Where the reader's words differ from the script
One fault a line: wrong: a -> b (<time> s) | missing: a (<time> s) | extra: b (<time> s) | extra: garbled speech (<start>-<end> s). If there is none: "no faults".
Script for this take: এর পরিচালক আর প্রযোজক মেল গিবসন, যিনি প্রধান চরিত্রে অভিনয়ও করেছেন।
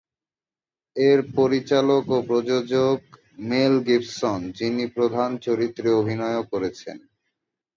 wrong: আর -> ও (2.1 s)